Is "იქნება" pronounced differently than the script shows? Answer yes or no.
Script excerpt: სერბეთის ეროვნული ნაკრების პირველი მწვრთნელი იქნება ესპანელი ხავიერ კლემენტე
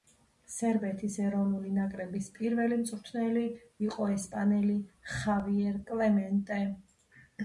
yes